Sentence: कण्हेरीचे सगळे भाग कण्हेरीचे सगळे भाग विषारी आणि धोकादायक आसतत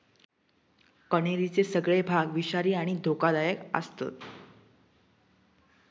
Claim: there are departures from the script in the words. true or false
true